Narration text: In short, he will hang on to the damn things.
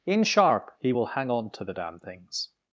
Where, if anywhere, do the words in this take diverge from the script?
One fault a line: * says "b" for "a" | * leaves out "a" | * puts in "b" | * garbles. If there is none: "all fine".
* says "sharp" for "short"